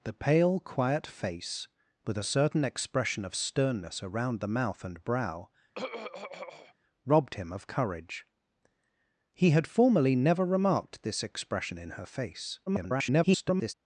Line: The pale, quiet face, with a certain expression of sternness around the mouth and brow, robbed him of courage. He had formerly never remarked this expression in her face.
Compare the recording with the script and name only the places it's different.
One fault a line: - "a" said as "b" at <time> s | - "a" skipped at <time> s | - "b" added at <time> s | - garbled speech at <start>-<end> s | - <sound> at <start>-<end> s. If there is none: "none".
- throat clearing at 5.7-6.7 s
- garbled speech at 12.7-13.7 s